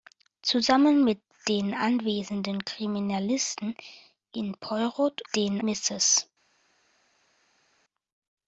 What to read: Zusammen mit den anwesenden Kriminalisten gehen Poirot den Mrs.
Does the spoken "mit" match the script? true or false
true